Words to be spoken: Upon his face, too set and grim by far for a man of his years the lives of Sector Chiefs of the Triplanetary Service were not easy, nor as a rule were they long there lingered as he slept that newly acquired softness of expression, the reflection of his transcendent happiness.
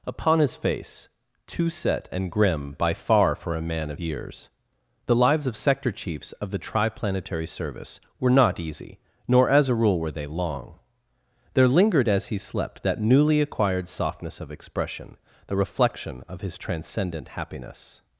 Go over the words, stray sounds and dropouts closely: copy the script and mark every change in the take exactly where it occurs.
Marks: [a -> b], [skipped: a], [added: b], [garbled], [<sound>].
Upon his face, too set and grim by far for a man of [skipped: his] years the lives of Sector Chiefs of the Triplanetary Service were not easy, nor as a rule were they long there lingered as he slept that newly acquired softness of expression, the reflection of his transcendent happiness.